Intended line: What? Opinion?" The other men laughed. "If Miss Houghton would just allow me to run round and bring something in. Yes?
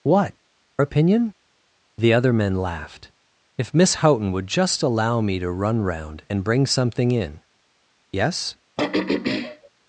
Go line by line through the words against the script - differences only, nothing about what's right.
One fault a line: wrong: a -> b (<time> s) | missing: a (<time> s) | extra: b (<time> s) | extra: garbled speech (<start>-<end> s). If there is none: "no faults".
no faults